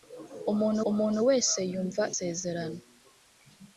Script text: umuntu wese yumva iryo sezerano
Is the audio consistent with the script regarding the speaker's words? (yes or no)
no